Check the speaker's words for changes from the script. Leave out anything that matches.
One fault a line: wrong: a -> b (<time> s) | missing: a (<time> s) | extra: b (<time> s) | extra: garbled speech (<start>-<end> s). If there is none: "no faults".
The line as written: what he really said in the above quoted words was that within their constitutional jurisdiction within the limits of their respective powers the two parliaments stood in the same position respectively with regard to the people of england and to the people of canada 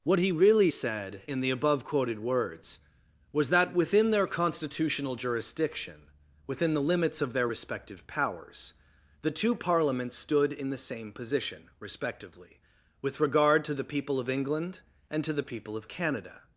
no faults